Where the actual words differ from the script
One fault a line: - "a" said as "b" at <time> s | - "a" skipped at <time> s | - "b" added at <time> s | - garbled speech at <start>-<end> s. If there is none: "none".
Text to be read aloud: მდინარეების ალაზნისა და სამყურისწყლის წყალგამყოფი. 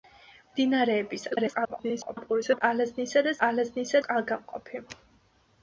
- garbled speech at 1.3-2.6 s
- "სამყურისწყლის" said as "ალაზნისა" at 3.5 s